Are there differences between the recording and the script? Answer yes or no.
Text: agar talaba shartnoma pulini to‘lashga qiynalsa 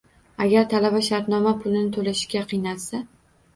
no